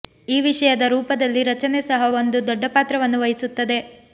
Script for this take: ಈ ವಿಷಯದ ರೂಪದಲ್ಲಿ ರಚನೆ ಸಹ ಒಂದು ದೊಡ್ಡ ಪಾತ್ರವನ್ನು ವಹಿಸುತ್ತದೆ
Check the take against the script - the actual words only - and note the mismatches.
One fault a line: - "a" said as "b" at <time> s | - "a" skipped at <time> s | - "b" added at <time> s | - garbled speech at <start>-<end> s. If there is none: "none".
none